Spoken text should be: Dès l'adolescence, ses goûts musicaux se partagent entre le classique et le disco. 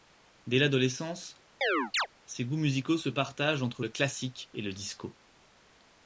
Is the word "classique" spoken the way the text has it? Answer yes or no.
yes